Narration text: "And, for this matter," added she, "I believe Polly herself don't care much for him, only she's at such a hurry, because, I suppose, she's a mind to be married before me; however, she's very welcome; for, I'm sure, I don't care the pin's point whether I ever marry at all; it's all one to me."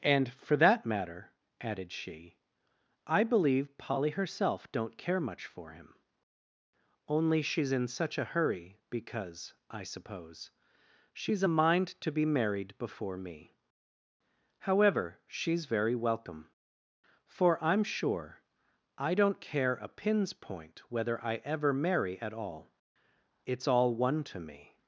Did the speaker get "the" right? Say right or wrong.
wrong